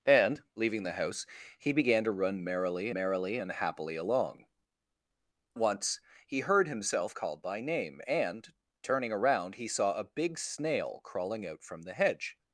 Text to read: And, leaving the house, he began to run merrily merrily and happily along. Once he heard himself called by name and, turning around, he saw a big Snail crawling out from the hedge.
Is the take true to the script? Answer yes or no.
yes